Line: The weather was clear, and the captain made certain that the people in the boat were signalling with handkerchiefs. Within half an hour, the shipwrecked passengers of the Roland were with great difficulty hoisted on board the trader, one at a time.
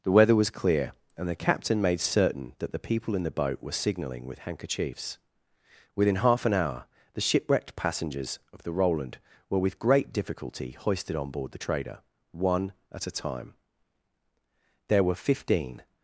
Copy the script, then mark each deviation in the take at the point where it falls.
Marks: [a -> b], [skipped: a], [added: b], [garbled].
The weather was clear, and the captain made certain that the people in the boat were signalling with handkerchiefs. Within half an hour, the shipwrecked passengers of the Roland were with great difficulty hoisted on board the trader, one at a time. [added: There were fifteen]